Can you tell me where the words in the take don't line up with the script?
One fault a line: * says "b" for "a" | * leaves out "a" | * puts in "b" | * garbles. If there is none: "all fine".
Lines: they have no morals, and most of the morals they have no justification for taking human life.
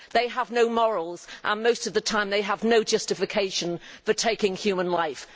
* says "time" for "morals"